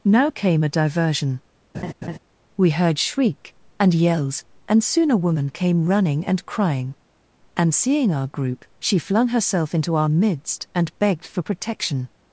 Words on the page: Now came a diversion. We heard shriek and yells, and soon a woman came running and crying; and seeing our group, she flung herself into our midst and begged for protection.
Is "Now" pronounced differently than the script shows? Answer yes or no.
no